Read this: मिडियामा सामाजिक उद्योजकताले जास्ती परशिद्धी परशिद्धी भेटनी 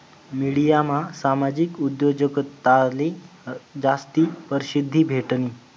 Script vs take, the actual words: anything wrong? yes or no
yes